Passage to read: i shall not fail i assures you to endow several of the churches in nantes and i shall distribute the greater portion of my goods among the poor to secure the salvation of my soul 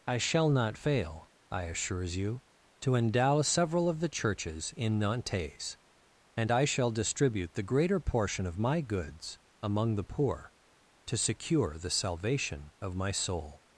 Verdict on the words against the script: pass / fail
pass